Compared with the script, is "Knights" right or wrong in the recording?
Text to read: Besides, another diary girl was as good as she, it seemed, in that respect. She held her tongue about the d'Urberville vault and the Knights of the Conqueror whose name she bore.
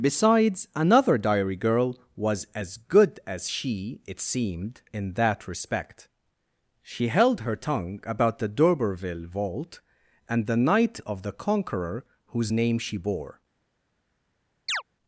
wrong